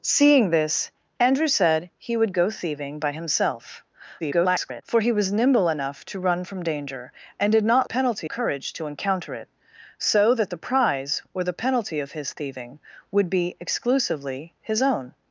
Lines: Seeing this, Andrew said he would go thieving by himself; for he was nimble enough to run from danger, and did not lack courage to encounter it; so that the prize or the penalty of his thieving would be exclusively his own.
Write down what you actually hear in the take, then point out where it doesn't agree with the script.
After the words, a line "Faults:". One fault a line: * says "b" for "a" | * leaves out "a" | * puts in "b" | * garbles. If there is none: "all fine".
Seeing this, Andrew said he would go thieving by himself; [garbled] for he was nimble enough to run from danger, and did not penalty courage to encounter it; so that the prize or the penalty of his thieving would be exclusively his own.
Faults:
* garbles
* says "penalty" for "lack"